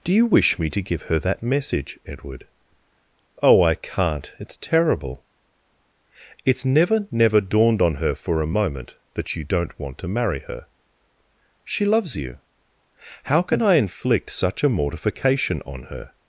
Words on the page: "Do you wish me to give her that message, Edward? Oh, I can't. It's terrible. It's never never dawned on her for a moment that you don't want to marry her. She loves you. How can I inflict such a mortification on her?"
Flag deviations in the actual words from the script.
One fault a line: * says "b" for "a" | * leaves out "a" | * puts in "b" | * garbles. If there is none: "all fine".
all fine